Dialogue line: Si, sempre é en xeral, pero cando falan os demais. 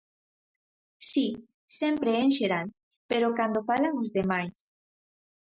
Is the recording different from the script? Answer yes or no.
no